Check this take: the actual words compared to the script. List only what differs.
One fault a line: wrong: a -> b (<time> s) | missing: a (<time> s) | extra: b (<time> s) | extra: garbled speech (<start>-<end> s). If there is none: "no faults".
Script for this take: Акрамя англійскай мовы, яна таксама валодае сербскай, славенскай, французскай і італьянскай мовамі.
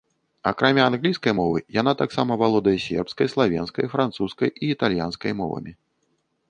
no faults